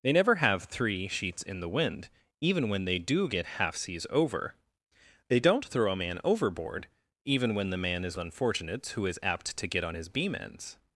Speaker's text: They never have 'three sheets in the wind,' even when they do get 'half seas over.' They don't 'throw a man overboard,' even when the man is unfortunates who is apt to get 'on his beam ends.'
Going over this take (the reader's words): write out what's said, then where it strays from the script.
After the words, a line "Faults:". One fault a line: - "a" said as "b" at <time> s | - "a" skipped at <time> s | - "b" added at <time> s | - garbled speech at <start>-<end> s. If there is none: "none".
They never have 'three sheets in the wind,' even when they do get 'half seas over.' They don't 'throw a man overboard,' even when the man is unfortunates who is apt to get 'on his beam ends.'
Faults:
none